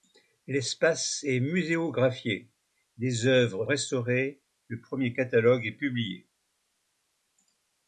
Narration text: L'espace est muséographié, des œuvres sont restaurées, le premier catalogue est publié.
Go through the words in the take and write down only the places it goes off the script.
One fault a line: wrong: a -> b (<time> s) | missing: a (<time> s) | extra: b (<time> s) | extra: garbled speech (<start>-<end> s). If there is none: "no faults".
missing: sont (3.7 s)